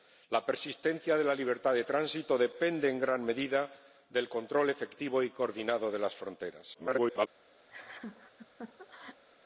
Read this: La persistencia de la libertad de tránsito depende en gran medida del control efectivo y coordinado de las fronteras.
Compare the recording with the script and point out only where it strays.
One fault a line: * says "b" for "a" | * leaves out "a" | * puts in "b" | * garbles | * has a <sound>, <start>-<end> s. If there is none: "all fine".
* garbles
* has a laugh, 7.7-9.2 s